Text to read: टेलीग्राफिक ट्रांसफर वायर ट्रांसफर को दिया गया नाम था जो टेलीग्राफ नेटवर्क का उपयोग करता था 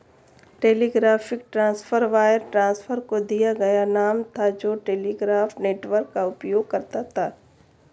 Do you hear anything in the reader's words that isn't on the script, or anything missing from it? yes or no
no